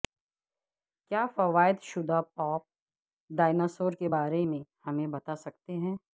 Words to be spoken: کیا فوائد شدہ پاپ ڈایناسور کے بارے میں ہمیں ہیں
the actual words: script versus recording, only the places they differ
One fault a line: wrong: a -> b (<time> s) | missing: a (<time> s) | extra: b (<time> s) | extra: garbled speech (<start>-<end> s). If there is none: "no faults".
extra: بتا سکتے (5.1 s)